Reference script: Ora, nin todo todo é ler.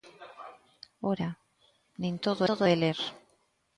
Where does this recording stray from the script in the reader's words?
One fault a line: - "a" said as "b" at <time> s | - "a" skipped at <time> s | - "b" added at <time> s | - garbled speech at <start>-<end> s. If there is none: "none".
none